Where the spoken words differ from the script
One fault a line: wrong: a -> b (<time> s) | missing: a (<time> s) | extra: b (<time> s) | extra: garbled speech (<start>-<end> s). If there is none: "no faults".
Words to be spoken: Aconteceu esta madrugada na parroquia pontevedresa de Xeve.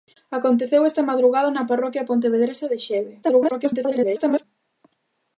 extra: garbled speech (3.2-4.4 s)